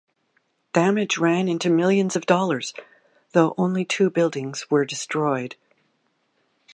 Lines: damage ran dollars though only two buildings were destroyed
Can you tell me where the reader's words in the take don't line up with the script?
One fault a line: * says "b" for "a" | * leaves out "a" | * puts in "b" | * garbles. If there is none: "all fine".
* puts in "into millions of"